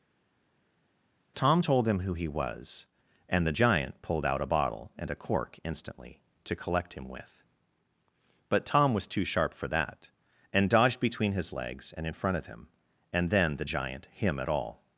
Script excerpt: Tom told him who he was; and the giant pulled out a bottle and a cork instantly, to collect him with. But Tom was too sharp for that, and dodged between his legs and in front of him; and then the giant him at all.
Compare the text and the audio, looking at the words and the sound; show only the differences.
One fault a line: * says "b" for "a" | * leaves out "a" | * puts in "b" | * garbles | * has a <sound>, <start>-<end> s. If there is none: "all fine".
all fine